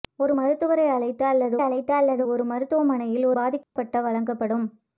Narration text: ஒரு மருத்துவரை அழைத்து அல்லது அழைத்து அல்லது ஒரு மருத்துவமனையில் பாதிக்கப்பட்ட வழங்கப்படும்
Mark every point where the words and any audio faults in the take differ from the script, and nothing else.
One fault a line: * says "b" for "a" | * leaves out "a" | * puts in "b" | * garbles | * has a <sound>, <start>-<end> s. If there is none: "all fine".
* has a dropout, 3.6-3.8 s